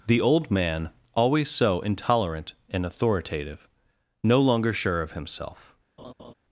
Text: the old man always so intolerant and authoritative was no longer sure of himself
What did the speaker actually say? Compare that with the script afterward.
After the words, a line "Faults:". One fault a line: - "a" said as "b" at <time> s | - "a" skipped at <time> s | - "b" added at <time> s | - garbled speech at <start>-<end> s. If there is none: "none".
the old man always so intolerant and authoritative no longer sure of himself
Faults:
- "was" skipped at 3.7 s